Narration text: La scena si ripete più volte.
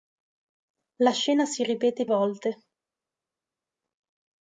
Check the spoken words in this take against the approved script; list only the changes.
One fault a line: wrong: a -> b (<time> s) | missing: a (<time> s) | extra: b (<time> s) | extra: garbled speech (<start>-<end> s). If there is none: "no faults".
missing: più (2.1 s)